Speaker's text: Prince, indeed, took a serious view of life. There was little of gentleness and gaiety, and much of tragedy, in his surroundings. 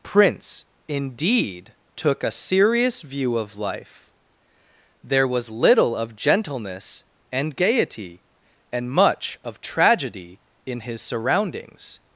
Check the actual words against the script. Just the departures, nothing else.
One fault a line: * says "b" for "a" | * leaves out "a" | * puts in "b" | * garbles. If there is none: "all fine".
all fine